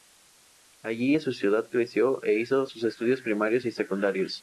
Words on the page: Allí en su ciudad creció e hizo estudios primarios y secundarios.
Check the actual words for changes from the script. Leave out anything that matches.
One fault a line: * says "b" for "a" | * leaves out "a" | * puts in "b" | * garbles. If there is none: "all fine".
* puts in "sus"